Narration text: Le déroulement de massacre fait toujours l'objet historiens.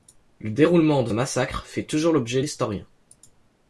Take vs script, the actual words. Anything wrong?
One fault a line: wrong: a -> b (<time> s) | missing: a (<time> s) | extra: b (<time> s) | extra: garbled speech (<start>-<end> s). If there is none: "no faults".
no faults